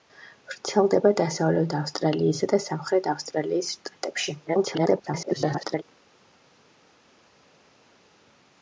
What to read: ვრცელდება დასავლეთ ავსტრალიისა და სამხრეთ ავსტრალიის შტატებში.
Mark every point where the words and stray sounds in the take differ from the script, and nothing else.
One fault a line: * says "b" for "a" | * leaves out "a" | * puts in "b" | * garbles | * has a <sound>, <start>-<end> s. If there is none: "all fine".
* garbles